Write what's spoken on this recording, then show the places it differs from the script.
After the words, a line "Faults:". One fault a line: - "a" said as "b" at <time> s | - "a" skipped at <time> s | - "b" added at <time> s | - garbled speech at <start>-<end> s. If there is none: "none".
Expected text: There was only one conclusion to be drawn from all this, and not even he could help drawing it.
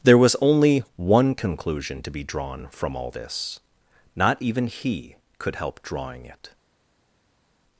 There was only one conclusion to be drawn from all this, not even he could help drawing it.
Faults:
- "and" skipped at 3.6 s